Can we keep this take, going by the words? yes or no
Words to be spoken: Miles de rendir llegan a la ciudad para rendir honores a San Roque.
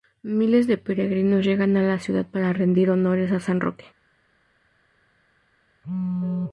no